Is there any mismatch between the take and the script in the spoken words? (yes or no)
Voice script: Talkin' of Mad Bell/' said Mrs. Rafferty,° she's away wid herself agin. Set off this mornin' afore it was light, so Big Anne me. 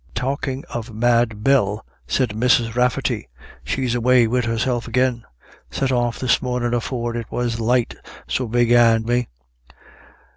no